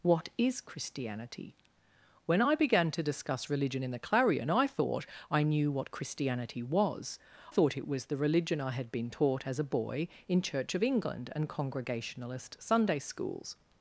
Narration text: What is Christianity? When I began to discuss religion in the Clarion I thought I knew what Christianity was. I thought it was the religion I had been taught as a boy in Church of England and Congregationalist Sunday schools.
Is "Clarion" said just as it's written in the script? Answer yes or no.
yes